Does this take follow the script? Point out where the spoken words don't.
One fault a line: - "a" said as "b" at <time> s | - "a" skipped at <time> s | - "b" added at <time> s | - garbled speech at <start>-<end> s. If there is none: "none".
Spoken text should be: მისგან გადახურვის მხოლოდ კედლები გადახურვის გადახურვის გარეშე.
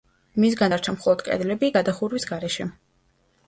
- "გადახურვის" said as "დარჩა" at 0.7 s
- "გადახურვის" skipped at 2.3 s